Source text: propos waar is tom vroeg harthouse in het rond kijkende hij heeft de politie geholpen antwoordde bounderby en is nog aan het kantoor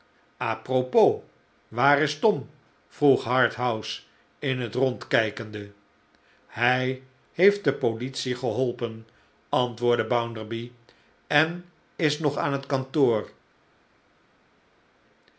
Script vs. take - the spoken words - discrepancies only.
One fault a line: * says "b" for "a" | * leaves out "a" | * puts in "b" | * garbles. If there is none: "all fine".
all fine